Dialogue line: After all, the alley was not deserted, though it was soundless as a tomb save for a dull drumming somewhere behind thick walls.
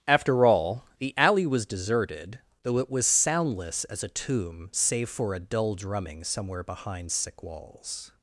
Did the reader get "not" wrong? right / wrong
wrong